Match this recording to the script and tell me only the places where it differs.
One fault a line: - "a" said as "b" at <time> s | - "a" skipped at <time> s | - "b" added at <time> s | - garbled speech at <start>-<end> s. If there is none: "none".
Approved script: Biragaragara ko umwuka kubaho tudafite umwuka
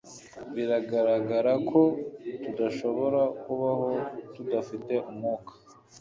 - "umwuka" said as "tudashobora" at 2.4 s